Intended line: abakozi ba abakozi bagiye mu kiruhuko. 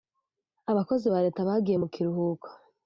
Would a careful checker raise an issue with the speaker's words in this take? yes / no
yes